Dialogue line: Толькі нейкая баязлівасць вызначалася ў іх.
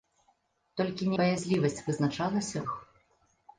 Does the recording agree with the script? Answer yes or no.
no